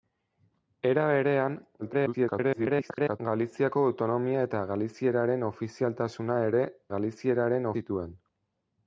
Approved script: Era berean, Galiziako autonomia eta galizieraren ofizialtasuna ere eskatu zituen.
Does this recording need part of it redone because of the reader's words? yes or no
yes